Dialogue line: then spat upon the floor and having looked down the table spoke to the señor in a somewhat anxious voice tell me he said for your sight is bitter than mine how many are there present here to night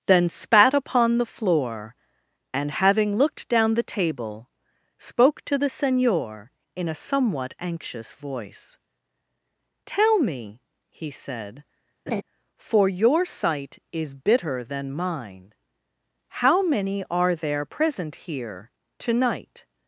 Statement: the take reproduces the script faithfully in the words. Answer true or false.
true